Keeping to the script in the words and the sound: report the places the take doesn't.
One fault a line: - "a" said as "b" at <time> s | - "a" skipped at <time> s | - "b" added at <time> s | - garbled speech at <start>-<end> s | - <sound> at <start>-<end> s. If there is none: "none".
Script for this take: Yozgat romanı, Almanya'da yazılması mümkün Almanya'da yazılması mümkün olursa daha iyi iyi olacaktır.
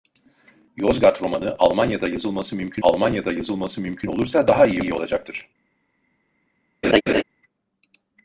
- laugh at 6.8-7.2 s